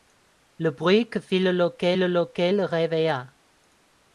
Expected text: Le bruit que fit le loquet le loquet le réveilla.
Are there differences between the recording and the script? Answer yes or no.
no